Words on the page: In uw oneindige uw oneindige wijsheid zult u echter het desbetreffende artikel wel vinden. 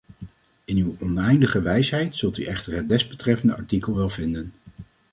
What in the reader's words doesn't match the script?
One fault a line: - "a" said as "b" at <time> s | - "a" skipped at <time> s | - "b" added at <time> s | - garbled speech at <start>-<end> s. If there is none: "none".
- "uw oneindige" skipped at 1.6 s